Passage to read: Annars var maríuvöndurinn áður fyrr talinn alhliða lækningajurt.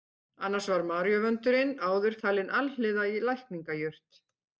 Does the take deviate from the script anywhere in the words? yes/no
yes